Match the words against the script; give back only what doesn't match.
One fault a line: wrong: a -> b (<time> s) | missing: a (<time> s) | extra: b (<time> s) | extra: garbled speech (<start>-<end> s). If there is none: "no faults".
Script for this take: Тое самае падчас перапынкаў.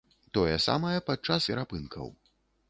no faults